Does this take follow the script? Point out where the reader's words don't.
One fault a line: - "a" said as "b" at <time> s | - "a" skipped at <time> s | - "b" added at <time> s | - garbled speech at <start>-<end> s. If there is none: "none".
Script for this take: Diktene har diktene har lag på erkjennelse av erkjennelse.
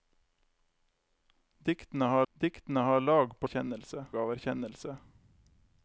none